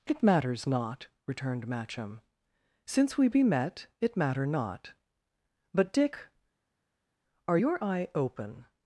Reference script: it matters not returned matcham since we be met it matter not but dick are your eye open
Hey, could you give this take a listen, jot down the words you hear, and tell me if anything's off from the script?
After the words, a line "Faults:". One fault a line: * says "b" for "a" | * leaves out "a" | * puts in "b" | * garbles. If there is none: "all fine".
it matters not returned matcham since we be met it matter not but dick are your eye open
Faults:
all fine